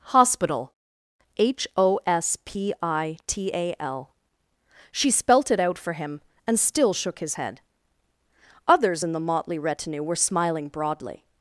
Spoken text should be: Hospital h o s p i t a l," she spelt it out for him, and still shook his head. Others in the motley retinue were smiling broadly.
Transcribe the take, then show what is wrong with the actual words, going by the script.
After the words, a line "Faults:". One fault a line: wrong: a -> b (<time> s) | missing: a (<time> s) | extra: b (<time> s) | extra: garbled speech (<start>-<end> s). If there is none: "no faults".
Hospital h o s p i t a l," she spelt it out for him, and still shook his head. Others in the motley retinue were smiling broadly.
Faults:
no faults